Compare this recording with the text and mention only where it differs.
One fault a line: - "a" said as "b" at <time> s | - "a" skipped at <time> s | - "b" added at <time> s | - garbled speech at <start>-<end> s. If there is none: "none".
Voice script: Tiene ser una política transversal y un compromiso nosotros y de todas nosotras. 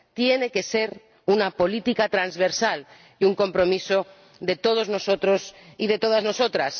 - "que" added at 0.5 s
- "de todos" added at 4.4 s